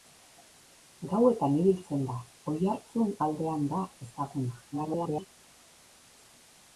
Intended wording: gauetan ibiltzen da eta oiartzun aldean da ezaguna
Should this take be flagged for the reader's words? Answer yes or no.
yes